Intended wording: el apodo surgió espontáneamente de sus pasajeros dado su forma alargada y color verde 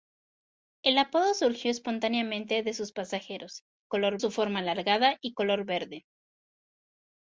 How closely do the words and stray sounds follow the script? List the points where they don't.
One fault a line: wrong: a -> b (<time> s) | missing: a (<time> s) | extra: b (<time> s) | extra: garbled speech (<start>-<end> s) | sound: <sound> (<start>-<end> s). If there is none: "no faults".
wrong: dado -> color (3.9 s)